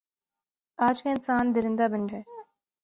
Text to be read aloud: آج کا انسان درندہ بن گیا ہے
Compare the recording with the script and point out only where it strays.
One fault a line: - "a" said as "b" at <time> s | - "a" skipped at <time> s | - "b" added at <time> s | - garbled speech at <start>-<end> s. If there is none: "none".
- "گیا" skipped at 2.1 s